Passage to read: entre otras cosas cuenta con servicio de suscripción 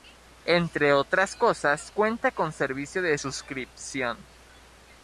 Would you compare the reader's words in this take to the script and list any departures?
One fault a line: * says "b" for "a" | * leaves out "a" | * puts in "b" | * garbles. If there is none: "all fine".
all fine